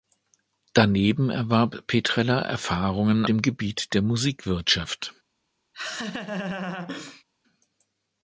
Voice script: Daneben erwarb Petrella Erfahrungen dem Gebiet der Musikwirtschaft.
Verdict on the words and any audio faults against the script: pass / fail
fail